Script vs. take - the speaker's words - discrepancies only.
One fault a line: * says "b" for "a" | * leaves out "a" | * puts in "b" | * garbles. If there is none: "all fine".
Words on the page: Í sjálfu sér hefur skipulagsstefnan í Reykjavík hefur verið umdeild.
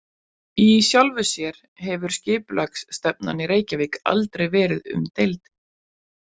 * says "aldrei" for "hefur"